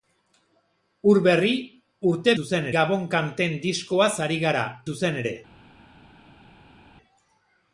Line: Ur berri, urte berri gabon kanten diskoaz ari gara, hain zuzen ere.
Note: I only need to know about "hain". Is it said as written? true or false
false